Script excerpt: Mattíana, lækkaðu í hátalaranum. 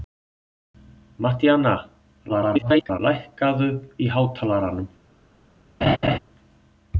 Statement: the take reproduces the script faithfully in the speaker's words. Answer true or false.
false